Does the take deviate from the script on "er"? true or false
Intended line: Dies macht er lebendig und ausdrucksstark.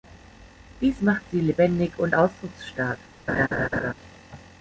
true